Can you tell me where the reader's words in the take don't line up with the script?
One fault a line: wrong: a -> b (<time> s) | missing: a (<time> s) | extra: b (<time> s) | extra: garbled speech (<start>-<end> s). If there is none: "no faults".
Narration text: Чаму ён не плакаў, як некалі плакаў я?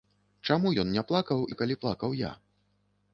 missing: як (1.4 s)